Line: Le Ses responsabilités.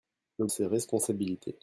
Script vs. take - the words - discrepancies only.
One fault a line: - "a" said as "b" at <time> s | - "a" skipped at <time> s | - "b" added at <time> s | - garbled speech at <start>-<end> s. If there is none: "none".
none